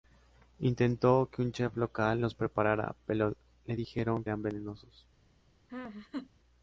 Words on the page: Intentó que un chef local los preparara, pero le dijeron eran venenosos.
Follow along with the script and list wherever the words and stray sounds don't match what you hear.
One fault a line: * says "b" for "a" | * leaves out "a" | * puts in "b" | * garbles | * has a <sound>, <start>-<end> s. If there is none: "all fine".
* has a laugh, 5.7-6.3 s